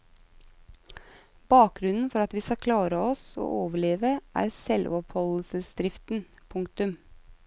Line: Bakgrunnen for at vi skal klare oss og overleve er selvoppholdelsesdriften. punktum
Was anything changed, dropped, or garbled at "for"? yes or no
no